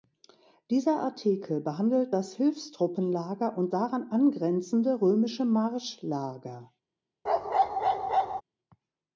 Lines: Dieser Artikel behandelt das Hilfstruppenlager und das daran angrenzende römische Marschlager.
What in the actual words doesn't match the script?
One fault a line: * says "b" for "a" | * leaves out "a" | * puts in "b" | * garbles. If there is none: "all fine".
* leaves out "das"